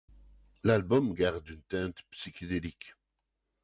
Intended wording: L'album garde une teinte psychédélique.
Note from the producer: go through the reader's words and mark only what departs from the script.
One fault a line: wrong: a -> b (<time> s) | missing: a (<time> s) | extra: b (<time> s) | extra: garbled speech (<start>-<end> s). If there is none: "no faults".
no faults